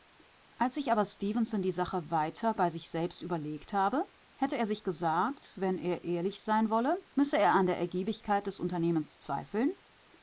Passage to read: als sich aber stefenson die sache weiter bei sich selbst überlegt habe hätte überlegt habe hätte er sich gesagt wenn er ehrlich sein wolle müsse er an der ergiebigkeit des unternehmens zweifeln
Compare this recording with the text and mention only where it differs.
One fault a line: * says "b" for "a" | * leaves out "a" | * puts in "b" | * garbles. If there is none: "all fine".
* leaves out "überlegt habe hätte"